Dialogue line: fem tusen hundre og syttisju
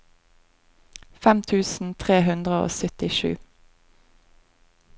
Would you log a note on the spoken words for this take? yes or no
yes